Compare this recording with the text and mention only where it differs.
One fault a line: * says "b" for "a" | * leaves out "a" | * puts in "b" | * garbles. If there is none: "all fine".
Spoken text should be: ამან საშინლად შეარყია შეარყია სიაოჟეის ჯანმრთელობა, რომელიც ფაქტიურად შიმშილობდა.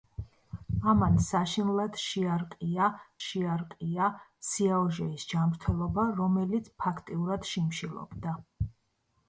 all fine